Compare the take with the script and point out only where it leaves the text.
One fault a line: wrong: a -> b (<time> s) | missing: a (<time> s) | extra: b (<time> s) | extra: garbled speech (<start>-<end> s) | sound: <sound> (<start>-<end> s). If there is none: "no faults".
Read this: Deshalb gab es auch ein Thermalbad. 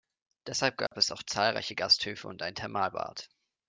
sound: dropout (0.9-0.9 s)
extra: zahlreiche Gasthöfe und (1.2 s)